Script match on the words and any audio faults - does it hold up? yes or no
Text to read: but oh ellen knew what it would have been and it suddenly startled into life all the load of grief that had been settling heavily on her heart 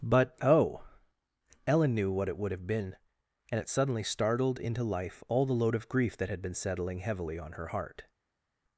yes